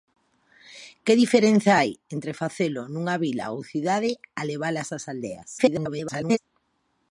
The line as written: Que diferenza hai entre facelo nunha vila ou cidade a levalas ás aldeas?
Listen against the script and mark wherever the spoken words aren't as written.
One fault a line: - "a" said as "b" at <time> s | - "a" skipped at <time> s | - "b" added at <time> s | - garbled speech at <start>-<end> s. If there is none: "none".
- garbled speech at 5.6-6.4 s